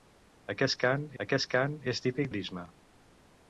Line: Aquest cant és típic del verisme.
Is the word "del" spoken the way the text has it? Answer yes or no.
no